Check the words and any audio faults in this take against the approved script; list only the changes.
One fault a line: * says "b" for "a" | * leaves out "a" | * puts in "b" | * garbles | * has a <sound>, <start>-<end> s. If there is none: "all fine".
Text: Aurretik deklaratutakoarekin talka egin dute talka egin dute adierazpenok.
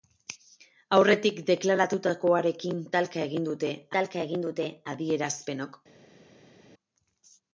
all fine